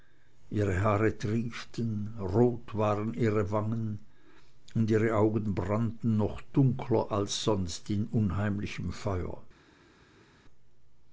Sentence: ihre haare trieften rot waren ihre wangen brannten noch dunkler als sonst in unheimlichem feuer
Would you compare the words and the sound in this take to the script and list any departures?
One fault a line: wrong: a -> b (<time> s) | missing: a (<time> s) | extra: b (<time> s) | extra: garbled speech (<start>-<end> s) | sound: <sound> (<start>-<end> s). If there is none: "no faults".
extra: und ihre augen (4.7 s)